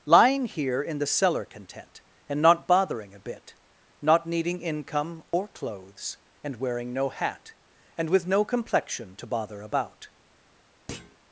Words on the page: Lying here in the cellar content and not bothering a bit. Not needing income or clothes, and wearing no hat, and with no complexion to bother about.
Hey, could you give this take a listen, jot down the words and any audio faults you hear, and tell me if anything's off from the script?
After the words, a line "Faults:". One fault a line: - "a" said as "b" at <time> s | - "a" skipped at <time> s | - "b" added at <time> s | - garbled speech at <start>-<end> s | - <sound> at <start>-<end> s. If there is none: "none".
Lying here in the cellar content and not bothering a bit. Not needing income or clothes, and wearing no hat, and with no complexion to bother about.
Faults:
- dropout at 5.3-5.3 s
- thud at 10.9-11.2 s